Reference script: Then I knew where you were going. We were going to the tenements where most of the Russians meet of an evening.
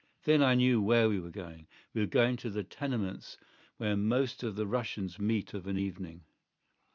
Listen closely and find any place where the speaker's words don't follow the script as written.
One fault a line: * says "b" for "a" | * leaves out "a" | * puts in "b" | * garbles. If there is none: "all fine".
* says "we" for "you"